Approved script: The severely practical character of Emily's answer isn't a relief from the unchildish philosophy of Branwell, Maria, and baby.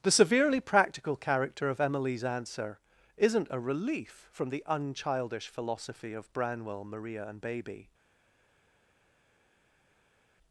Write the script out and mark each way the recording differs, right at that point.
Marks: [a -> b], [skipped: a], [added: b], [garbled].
The severely practical character of Emily's answer isn't a relief from the unchildish philosophy of Branwell, Maria, and baby.